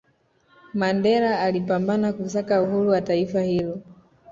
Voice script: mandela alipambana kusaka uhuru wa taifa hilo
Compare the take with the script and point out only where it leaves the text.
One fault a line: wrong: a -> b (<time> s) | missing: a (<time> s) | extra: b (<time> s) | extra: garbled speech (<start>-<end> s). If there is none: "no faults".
no faults